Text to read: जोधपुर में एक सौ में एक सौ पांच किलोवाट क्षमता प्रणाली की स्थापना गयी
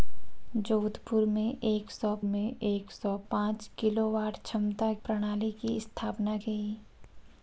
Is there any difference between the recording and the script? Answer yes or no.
no